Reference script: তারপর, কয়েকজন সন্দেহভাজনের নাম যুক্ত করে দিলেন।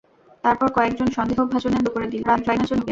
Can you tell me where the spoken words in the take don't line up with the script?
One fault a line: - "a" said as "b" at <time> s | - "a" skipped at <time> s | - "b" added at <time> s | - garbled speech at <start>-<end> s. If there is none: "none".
- "নাম যুক্ত" skipped at 1.8 s
- garbled speech at 2.2-2.9 s